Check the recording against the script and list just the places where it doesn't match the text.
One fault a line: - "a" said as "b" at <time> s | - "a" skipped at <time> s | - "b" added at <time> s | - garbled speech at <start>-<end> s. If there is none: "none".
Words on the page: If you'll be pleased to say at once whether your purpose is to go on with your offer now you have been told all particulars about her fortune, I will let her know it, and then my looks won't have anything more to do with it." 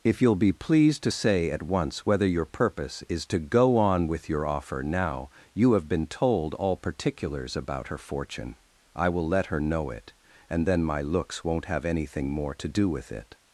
none